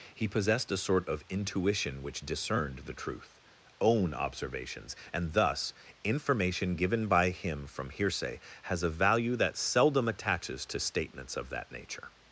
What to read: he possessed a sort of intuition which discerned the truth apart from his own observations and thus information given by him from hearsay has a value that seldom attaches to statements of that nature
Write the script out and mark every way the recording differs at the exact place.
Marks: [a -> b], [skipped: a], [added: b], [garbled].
he possessed a sort of intuition which discerned the truth [skipped: apart from his] own observations and thus information given by him from hearsay has a value that seldom attaches to statements of that nature